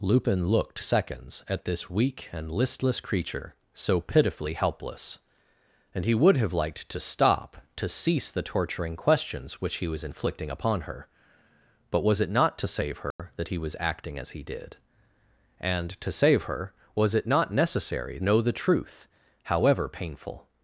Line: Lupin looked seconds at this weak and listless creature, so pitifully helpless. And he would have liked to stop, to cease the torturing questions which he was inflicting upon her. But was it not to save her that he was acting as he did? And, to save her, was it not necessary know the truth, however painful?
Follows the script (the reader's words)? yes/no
yes